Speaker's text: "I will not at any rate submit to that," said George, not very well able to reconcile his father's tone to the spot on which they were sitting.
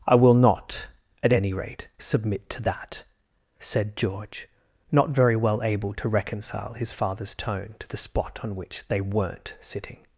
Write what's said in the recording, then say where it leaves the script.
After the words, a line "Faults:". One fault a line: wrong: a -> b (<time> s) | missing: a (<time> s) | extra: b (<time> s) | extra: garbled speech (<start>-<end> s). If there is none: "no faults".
"I will not at any rate submit to that," said George, not very well able to reconcile his father's tone to the spot on which they weren't sitting.
Faults:
wrong: were -> weren't (9.0 s)